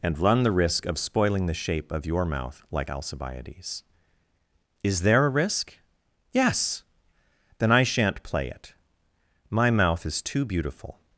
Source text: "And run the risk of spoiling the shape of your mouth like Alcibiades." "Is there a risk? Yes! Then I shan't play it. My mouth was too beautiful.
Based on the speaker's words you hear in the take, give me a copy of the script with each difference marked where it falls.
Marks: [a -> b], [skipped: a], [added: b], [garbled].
"And run the risk of spoiling the shape of your mouth like Alcibiades." "Is there a risk? Yes! Then I shan't play it. My mouth [was -> is] too beautiful.